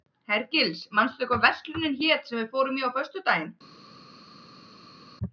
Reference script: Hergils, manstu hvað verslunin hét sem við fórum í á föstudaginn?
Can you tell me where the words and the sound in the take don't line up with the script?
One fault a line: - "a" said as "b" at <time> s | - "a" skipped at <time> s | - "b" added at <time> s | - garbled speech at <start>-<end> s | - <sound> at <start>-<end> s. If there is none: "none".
none